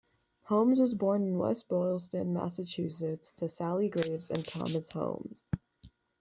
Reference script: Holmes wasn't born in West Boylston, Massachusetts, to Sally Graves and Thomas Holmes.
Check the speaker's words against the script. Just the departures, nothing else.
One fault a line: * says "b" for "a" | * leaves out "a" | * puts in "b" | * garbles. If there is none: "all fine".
* says "was" for "wasn't"